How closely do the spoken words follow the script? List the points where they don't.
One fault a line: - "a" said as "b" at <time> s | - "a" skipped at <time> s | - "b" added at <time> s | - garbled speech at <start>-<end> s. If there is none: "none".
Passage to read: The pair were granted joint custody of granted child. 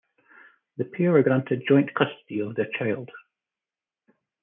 - "granted" said as "their" at 2.5 s